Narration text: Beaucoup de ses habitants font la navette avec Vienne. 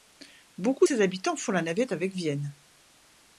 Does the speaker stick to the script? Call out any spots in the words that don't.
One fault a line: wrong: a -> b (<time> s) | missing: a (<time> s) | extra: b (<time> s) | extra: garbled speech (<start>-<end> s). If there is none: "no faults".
no faults